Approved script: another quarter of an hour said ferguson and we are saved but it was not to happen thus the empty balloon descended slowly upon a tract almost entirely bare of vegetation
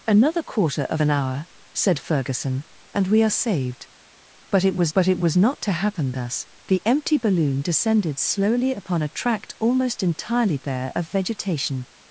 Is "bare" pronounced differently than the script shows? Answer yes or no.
no